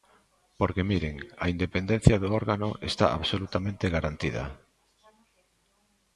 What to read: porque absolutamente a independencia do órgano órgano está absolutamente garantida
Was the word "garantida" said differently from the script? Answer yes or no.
no